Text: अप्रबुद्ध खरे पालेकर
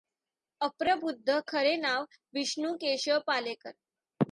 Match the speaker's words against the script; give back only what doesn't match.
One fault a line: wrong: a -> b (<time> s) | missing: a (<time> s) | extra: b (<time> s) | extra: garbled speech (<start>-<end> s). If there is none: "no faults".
extra: नाव विष्णू केशव (1.8 s)